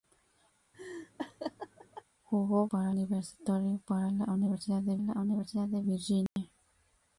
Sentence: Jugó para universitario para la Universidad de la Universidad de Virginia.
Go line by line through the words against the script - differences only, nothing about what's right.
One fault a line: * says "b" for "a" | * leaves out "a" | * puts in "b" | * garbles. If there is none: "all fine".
all fine